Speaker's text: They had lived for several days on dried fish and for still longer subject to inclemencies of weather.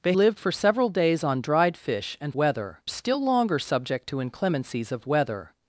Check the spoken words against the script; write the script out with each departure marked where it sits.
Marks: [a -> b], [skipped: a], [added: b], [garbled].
They [skipped: had] lived for several days on dried fish and [for -> weather] still longer subject to inclemencies of weather.